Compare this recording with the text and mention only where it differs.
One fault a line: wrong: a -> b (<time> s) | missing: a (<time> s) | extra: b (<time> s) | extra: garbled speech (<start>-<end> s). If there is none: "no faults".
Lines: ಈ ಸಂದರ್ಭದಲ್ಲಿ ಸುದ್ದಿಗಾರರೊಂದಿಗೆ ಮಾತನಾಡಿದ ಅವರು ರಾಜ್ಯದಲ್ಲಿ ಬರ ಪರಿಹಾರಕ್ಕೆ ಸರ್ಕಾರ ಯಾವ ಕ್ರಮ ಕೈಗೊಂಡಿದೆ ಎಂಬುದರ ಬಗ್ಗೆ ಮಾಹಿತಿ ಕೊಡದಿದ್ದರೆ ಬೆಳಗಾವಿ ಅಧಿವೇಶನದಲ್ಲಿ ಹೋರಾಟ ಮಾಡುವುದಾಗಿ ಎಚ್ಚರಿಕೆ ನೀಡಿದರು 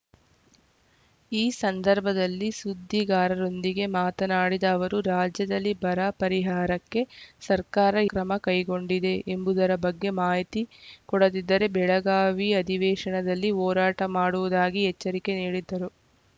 missing: ಯಾವ (7.9 s)